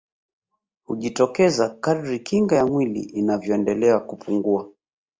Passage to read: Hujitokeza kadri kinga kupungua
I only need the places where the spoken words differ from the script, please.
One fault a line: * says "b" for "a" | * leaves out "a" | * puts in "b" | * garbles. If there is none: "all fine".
* puts in "ya mwili inavyoendelea"